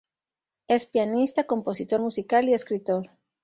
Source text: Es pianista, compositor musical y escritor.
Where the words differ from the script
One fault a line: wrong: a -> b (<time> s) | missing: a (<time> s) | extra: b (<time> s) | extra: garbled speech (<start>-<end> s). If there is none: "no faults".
no faults